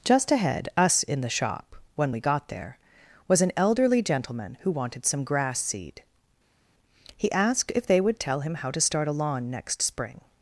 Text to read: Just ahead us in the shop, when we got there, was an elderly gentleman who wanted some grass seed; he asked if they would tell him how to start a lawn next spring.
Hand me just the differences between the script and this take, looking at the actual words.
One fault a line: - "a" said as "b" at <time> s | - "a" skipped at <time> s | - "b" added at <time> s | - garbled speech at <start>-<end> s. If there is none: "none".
none